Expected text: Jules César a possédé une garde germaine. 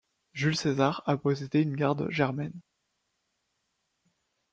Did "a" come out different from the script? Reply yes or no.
no